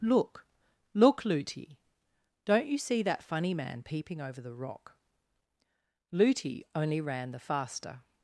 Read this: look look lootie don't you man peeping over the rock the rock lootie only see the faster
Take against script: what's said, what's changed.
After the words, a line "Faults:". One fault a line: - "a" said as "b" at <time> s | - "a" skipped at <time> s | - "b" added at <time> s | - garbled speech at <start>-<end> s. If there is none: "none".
look look lootie don't you see that funny man peeping over the rock lootie only ran the faster
Faults:
- "see that funny" added at 2.8 s
- "the rock" skipped at 5.0 s
- "see" said as "ran" at 7.0 s